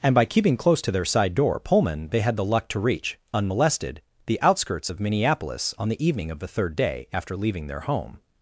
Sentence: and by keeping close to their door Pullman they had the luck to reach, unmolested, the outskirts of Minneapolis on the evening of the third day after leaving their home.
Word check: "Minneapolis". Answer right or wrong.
right